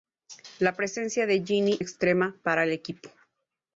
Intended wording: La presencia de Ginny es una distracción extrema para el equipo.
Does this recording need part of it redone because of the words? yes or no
yes